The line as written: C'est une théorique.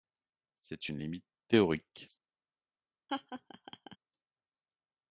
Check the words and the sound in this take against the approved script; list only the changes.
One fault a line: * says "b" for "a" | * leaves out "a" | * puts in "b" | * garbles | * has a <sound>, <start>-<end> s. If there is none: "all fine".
* puts in "limite"
* has a laugh, 3.1-4.0 s